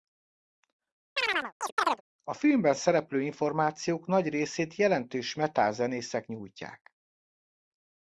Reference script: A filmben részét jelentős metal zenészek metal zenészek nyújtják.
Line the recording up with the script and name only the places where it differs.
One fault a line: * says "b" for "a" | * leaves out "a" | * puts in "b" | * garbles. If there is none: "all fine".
* puts in "szereplő információk nagy"
* leaves out "metal zenészek"